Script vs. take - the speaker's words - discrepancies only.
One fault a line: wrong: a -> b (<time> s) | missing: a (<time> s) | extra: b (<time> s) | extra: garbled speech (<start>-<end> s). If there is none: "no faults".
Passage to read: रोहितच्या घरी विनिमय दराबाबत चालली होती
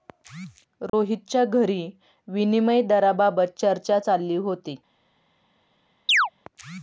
extra: चर्चा (3.6 s)